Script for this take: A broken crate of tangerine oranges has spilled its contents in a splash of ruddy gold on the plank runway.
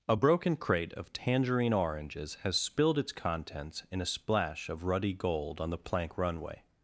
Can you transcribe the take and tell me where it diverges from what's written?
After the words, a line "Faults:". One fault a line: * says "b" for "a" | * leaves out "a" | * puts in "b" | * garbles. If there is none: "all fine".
A broken crate of tangerine oranges has spilled its contents in a splash of ruddy gold on the plank runway.
Faults:
all fine